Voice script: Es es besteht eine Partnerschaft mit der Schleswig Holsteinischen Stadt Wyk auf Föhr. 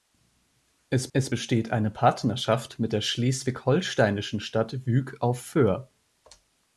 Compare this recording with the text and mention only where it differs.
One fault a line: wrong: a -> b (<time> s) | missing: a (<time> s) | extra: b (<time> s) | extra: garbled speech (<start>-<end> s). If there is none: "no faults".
no faults